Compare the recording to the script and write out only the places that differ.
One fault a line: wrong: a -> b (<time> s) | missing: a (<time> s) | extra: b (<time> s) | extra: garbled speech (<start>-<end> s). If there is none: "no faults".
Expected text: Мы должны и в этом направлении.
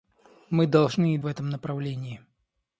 no faults